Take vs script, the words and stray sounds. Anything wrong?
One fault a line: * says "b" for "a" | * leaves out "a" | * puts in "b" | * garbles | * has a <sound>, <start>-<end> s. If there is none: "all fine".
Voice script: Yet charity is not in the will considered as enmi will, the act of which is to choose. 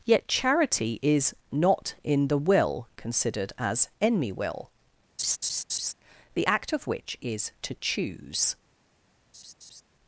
* has a laugh, 5.2-5.9 s
* has a laugh, 9.3-9.8 s